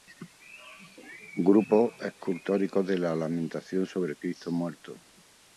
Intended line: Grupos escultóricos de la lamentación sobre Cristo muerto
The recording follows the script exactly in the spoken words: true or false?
true